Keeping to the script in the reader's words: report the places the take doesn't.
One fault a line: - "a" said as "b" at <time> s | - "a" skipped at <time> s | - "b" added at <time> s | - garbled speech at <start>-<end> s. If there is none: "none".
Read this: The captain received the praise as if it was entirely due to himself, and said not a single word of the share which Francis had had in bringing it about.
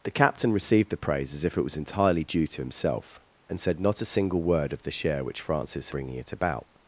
- "had had in" skipped at 5.9 s